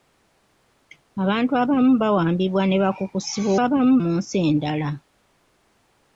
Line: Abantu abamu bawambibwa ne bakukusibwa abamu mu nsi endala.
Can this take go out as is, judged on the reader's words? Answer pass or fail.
pass